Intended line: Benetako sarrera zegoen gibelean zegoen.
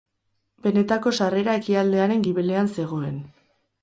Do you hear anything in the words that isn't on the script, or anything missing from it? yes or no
yes